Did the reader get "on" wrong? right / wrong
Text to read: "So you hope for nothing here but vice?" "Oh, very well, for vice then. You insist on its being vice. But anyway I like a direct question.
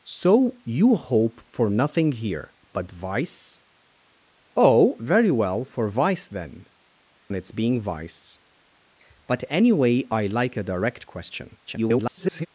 wrong